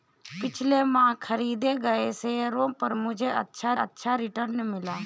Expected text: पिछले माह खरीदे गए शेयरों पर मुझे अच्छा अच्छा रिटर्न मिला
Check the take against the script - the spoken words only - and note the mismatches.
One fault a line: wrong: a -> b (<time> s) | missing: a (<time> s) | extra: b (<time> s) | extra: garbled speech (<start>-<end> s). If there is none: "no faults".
no faults